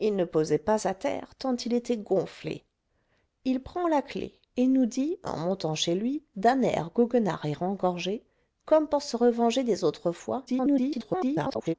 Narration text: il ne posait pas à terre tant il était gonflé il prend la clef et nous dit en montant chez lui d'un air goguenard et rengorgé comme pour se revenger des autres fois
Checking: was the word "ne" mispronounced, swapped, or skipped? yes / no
no